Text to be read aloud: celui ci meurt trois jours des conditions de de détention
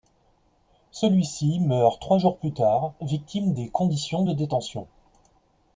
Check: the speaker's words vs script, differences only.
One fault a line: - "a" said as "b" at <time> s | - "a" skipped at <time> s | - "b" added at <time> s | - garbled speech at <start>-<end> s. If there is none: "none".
- "plus tard victime" added at 2.4 s
- "de" skipped at 4.3 s